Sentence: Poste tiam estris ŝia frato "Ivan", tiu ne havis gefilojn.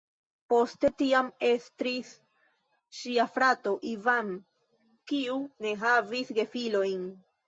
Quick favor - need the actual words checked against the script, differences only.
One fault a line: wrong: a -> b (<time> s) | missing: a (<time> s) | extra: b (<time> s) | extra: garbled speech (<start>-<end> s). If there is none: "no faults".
wrong: tiu -> kiu (5.1 s)